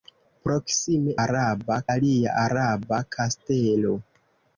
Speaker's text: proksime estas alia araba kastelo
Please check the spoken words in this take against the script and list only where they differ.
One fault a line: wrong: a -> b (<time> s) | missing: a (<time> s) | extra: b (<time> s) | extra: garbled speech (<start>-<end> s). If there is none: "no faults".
wrong: estas -> araba (1.3 s)